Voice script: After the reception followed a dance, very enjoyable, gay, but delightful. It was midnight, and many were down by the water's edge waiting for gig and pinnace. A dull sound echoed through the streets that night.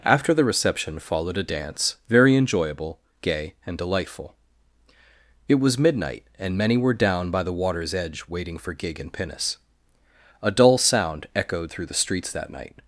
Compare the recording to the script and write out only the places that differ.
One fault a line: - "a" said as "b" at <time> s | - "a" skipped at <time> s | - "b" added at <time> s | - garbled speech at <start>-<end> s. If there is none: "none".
- "but" said as "and" at 3.7 s